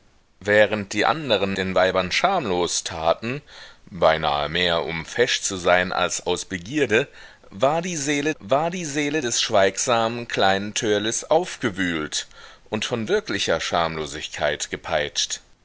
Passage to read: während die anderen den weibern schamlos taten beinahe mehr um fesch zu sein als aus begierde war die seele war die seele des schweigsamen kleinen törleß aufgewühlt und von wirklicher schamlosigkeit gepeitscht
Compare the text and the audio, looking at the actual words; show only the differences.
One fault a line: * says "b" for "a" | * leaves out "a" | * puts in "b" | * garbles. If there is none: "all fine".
all fine